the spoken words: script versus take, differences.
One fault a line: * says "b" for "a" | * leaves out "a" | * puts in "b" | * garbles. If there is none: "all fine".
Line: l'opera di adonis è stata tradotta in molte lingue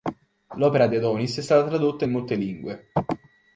all fine